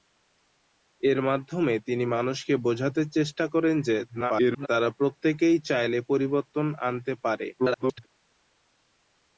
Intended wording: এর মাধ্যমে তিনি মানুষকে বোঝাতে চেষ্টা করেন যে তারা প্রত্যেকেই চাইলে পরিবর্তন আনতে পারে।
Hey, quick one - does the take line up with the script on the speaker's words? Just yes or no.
no